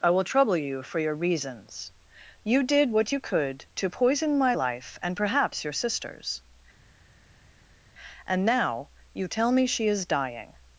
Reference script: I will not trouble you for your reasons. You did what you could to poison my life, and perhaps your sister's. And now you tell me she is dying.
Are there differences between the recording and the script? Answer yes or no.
yes